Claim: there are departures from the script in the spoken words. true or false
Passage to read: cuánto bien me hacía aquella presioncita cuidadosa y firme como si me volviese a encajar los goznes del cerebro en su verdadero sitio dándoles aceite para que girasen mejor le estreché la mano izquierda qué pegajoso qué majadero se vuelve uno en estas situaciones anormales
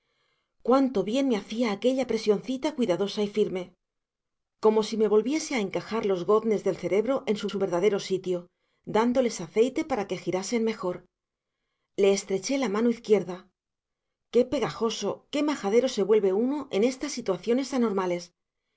true